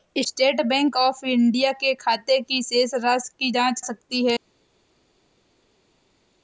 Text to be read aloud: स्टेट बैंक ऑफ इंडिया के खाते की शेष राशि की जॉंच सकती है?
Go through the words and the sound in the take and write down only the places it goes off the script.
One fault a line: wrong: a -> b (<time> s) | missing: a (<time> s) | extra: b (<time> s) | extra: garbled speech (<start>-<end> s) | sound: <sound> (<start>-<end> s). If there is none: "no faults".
no faults